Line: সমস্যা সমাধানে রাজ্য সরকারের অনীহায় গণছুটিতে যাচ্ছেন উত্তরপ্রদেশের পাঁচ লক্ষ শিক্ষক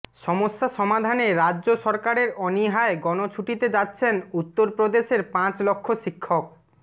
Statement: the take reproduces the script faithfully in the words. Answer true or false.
true